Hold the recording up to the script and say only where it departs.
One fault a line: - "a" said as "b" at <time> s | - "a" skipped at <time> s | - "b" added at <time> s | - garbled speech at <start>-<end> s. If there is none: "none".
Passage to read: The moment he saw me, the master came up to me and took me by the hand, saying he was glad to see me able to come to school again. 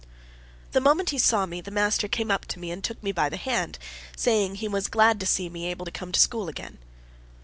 none